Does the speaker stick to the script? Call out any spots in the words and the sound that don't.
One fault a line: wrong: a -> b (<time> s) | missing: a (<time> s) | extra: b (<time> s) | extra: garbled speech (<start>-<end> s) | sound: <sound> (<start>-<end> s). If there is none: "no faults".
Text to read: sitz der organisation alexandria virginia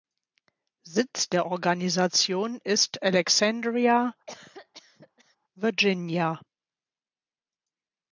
extra: ist (2.6 s)
sound: cough (4.3-5.4 s)